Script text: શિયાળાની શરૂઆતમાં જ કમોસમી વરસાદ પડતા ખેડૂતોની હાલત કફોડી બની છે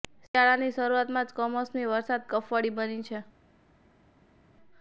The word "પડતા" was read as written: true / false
false